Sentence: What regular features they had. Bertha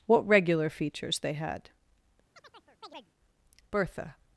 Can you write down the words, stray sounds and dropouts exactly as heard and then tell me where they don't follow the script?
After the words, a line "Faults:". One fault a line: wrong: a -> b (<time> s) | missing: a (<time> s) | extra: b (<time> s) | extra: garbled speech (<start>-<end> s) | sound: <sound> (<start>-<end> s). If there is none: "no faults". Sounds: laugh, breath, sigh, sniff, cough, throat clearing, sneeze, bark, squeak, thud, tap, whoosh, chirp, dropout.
What regular features they had. Bertha
Faults:
sound: chirp (2.3-3.1 s)